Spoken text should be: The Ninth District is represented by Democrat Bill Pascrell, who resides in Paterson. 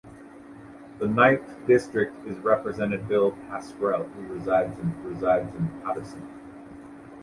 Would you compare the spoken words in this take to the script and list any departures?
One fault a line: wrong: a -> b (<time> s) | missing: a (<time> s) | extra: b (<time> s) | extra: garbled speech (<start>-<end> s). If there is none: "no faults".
missing: by Democrat (3.1 s)
extra: resides in (5.1 s)